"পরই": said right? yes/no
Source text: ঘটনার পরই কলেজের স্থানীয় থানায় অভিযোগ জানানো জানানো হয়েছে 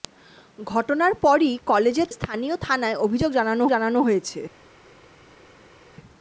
yes